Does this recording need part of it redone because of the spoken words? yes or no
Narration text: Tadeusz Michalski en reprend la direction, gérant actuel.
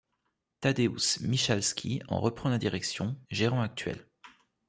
no